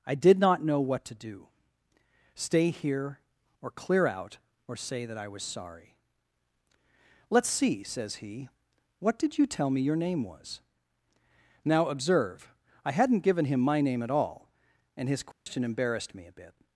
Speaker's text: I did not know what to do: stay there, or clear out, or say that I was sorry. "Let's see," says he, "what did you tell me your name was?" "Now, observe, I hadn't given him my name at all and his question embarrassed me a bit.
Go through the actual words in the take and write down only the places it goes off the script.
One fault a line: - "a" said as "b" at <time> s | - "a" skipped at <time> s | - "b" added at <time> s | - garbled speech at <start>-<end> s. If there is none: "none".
- "there" said as "here" at 2.7 s